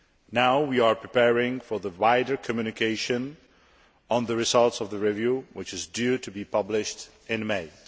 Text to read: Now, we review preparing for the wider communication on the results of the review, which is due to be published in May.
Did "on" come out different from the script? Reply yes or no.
no